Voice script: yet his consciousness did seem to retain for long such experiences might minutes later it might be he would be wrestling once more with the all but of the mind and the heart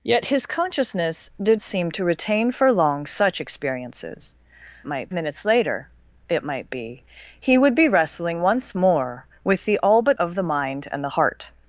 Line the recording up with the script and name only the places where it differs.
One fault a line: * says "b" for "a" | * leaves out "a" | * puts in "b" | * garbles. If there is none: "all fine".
all fine